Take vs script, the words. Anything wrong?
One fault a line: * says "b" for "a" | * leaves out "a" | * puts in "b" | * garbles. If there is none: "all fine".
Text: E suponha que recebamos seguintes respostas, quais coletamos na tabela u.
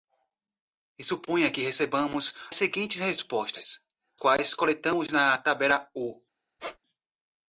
all fine